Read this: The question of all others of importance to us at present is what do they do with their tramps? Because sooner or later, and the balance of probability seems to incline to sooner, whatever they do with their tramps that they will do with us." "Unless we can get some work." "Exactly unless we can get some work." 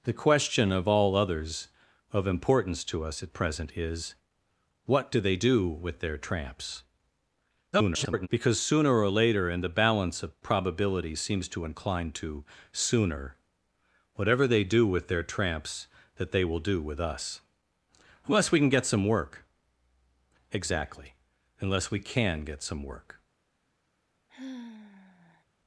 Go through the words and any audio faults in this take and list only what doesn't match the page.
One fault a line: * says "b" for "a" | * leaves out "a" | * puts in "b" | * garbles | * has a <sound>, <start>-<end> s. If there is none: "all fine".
* garbles
* has a sigh, 24.3-25.4 s